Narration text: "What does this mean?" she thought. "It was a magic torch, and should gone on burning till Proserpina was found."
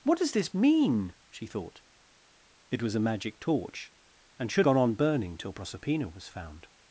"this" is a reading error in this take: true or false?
false